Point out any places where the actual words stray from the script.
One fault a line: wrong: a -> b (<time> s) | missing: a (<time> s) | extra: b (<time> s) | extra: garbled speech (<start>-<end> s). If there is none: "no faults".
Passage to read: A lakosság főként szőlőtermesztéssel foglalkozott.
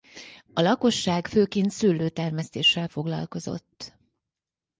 no faults